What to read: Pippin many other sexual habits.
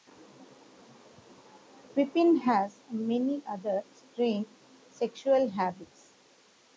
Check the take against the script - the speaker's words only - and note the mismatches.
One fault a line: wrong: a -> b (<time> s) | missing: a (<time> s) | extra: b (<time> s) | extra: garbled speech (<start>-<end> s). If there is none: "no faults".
extra: has (2.4 s)
extra: strange (3.9 s)